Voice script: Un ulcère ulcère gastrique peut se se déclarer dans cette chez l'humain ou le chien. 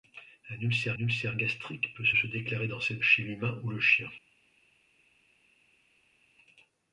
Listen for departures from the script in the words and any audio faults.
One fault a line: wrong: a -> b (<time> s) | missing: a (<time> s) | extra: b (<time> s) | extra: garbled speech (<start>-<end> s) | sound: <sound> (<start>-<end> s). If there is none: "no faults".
no faults